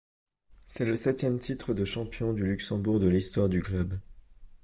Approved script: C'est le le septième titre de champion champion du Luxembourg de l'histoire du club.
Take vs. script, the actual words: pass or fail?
fail